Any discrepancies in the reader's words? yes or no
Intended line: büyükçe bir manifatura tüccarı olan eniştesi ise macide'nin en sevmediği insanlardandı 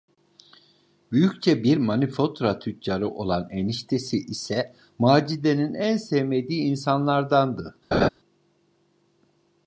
no